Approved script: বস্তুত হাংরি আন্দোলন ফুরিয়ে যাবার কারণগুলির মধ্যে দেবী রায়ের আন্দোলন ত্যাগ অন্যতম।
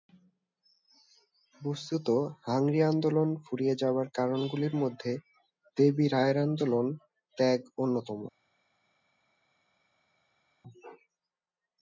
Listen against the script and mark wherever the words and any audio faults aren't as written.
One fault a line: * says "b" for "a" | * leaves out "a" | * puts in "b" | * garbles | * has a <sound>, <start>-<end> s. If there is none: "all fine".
all fine